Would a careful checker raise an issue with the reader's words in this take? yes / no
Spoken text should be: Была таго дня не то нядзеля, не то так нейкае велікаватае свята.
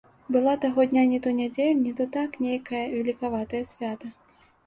no